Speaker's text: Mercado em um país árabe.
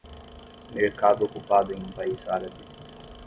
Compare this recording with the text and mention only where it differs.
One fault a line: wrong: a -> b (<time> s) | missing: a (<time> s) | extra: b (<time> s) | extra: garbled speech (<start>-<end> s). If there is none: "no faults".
extra: ocupado (1.2 s)